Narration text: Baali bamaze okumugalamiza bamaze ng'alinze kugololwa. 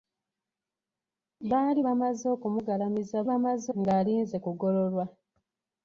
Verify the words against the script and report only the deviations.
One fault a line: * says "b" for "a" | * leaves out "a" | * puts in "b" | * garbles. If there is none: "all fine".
all fine